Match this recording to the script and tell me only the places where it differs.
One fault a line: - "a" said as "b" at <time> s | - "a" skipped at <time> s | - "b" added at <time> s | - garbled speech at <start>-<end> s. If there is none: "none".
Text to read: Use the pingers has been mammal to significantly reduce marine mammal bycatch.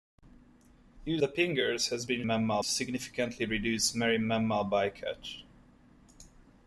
none